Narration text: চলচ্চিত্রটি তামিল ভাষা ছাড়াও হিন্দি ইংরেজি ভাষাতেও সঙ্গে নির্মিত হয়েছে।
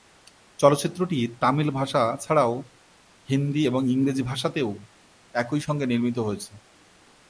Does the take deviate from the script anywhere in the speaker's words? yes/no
yes